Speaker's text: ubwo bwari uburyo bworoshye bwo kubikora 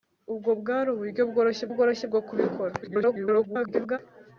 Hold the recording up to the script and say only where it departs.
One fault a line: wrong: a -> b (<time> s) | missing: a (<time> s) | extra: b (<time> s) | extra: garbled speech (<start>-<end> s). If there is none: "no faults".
extra: bworoshye (1.7 s)
extra: garbled speech (2.8-4.0 s)